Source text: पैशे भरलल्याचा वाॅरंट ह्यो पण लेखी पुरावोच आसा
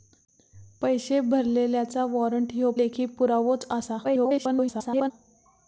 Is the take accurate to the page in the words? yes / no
no